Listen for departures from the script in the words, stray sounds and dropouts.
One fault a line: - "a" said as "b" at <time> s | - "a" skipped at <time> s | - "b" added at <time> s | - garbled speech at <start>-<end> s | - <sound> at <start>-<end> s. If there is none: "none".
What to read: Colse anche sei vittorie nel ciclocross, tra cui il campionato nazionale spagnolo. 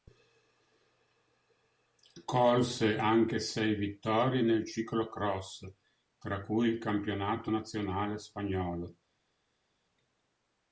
none